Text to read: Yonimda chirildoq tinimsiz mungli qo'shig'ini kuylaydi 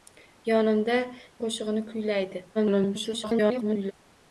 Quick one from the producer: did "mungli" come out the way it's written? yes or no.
no